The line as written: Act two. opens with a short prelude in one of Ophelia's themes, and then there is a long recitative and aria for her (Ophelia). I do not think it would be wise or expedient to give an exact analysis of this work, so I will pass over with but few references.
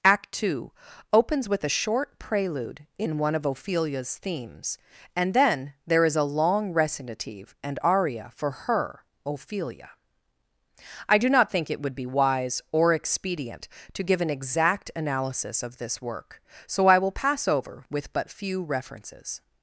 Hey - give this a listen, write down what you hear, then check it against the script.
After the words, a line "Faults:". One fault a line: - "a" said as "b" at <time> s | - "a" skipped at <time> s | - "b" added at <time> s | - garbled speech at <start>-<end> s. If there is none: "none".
Act two. opens with a short prelude in one of Ophelia's themes, and then there is a long recitative and aria for her (Ophelia). I do not think it would be wise or expedient to give an exact analysis of this work, so I will pass over with but few references.
Faults:
none